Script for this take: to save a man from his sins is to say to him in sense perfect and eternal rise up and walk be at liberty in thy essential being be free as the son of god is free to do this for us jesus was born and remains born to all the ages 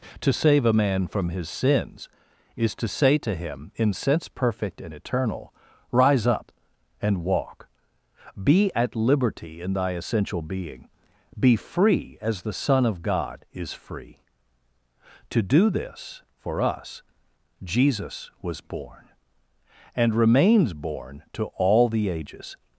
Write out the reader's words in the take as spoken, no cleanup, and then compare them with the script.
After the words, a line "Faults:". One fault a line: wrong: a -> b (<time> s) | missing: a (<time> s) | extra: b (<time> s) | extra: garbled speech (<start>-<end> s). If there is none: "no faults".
to save a man from his sins is to say to him in sense perfect and eternal rise up and walk be at liberty in thy essential being be free as the son of god is free to do this for us jesus was born and remains born to all the ages
Faults:
no faults